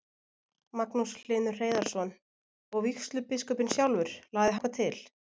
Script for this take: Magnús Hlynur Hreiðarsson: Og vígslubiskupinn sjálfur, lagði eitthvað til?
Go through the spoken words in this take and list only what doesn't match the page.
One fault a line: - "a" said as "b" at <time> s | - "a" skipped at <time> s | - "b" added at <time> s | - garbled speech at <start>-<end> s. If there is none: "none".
none